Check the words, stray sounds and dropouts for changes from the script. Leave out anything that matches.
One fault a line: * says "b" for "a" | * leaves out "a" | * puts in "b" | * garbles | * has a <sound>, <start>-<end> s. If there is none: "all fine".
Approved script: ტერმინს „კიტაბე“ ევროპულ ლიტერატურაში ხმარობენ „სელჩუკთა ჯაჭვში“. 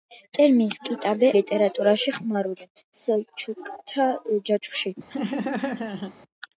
* leaves out "ევროპულ"
* has a laugh, 5.1-6.1 s